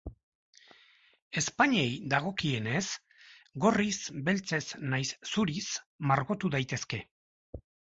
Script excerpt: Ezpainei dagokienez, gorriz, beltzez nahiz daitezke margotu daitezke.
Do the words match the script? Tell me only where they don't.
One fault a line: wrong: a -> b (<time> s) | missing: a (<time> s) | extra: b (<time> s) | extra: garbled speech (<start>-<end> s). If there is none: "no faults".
wrong: daitezke -> zuriz (5.3 s)